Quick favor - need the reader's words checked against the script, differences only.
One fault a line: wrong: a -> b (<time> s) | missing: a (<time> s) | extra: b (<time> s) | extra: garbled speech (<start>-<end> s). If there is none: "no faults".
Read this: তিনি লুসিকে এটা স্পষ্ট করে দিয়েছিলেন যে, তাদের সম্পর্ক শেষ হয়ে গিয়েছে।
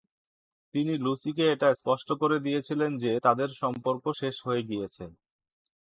no faults